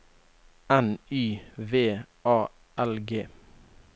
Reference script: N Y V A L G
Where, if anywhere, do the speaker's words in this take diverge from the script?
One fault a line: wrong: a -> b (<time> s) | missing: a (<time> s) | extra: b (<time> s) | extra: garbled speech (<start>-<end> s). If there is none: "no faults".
no faults